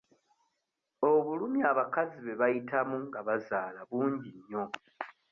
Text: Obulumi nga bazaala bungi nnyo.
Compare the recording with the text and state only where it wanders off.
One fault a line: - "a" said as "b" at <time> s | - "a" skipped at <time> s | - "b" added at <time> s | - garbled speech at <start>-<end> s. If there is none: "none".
- "abakazi bwe bayitamu" added at 1.7 s